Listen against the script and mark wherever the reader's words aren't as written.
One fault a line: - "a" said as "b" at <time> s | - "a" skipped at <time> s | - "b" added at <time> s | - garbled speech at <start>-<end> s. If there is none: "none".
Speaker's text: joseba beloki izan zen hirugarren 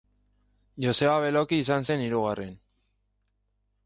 none